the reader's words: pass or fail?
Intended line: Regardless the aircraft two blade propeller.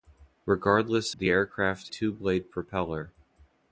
pass